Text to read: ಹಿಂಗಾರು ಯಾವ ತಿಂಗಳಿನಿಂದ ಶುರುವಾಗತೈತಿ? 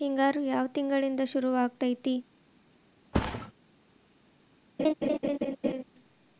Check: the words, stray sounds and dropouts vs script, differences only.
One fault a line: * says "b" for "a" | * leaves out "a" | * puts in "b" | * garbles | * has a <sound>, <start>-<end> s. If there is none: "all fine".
* has a thud, 3.1-3.5 s
* has a laugh, 4.8-5.8 s